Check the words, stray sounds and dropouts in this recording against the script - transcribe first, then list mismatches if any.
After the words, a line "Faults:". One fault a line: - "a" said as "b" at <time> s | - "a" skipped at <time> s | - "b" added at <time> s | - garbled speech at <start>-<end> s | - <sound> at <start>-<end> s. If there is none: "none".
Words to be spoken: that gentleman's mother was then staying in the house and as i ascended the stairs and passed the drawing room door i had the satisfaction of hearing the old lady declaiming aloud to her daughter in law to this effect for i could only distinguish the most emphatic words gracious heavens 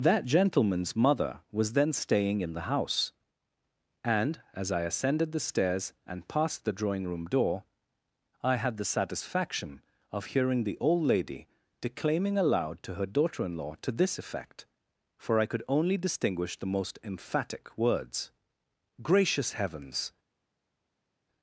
that gentleman's mother was then staying in the house and as i ascended the stairs and passed the drawing room door i had the satisfaction of hearing the old lady declaiming aloud to her daughter in law to this effect for i could only distinguish the most emphatic words gracious heavens
Faults:
none